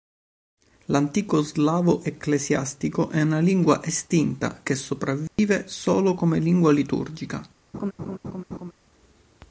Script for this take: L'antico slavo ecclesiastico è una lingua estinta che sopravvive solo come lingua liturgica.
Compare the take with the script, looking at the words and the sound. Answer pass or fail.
fail